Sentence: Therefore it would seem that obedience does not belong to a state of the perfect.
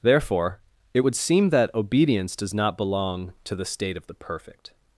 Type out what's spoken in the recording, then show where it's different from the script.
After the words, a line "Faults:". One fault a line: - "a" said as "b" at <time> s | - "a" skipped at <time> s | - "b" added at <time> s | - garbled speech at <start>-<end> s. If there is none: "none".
Therefore it would seem that obedience does not belong to the state of the perfect.
Faults:
- "a" said as "the" at 3.5 s